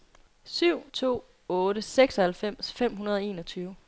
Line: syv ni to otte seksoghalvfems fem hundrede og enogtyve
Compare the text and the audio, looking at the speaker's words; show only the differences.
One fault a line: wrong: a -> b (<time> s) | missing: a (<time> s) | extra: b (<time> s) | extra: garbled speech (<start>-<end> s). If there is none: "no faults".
missing: ni (0.8 s)